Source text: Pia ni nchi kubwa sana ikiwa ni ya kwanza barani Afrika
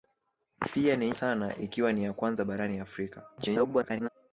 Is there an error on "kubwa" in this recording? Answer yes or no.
yes